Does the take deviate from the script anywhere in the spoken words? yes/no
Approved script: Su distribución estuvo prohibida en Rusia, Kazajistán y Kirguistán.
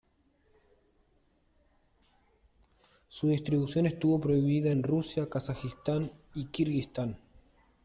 no